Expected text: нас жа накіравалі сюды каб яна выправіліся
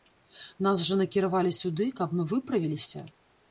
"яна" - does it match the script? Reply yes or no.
no